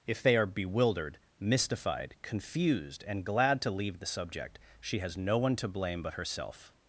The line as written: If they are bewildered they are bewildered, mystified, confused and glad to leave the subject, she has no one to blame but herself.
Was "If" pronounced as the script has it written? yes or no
yes